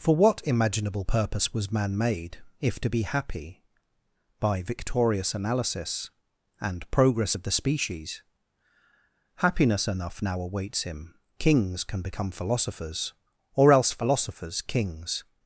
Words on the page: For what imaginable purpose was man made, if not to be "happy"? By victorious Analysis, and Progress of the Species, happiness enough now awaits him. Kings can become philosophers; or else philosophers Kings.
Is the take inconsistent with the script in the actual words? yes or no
yes